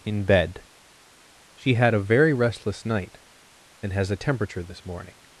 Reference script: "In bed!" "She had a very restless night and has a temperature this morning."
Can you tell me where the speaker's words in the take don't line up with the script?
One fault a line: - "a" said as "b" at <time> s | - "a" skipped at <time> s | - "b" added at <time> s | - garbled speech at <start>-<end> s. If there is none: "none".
none